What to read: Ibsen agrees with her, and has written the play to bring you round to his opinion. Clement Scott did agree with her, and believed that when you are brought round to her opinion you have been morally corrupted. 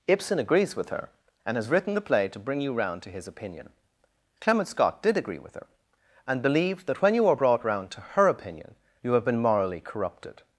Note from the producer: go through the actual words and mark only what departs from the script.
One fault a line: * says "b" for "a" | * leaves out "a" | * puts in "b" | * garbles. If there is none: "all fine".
all fine